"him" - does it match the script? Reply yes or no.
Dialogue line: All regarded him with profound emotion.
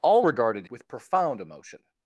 no